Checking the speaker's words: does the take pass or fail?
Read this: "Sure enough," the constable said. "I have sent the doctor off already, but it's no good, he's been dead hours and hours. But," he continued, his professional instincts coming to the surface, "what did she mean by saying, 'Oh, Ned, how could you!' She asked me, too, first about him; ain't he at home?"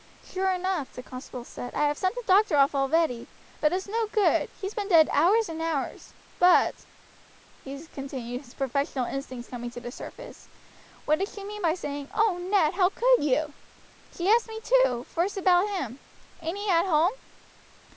pass